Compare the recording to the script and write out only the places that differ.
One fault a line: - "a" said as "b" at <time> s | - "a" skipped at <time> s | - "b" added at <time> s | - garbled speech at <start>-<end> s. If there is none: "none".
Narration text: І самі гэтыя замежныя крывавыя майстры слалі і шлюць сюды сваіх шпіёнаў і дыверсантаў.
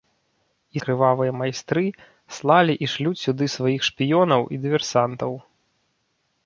- "самі гэтыя замежныя" skipped at 0.8 s